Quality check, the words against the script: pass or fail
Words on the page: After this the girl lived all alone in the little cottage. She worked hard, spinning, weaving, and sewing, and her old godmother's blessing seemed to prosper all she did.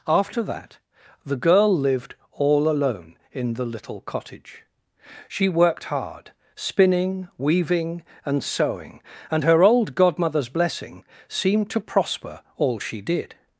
fail